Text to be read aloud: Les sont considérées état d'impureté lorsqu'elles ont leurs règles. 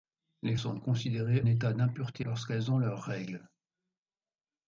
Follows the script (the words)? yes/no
yes